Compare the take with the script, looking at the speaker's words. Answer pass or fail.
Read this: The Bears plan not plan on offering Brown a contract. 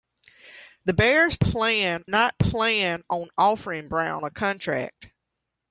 pass